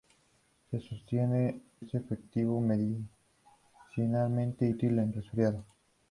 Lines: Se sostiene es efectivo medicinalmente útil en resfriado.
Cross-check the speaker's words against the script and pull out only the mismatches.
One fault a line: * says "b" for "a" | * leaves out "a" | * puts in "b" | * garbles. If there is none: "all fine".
all fine